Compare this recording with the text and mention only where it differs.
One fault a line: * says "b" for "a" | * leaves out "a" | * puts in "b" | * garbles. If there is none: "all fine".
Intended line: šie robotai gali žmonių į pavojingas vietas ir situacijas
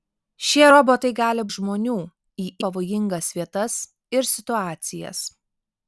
all fine